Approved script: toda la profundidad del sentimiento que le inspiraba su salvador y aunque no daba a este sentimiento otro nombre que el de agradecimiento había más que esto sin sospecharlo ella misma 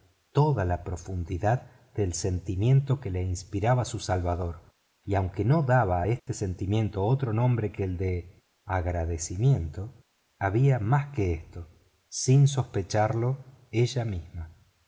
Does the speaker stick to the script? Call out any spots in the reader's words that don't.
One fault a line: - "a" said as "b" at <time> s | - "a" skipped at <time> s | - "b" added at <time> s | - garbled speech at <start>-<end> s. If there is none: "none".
none